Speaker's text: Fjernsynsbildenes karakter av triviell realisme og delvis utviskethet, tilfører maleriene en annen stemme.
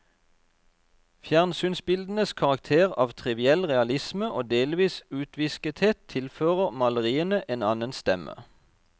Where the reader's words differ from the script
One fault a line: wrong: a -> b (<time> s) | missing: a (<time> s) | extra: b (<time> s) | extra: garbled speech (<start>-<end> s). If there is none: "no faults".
no faults